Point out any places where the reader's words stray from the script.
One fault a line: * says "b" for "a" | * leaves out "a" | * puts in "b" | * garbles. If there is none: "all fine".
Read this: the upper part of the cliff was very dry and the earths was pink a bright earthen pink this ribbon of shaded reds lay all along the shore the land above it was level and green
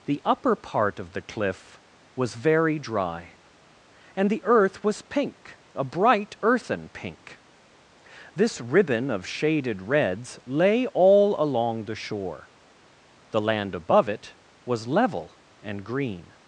* says "earth" for "earths"